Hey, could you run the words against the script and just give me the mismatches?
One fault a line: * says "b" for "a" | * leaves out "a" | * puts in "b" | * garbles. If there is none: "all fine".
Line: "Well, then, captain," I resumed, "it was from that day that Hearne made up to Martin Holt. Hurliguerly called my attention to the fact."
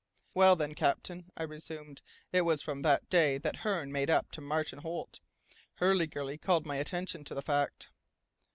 all fine